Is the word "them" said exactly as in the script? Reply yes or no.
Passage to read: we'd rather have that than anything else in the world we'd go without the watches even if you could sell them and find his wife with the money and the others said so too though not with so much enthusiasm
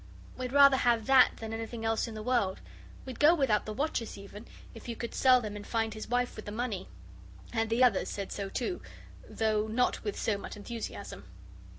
yes